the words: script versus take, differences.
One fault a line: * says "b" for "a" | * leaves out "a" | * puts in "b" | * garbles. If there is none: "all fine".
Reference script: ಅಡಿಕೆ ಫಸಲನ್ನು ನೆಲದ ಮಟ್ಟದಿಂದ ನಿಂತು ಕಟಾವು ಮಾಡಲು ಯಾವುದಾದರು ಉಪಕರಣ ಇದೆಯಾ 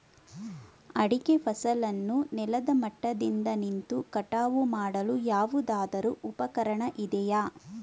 all fine